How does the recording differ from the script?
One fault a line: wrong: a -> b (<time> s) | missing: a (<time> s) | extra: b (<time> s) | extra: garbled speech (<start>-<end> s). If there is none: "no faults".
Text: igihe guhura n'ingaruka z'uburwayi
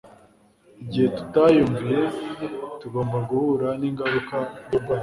extra: tutayumviye tugomba (1.2 s)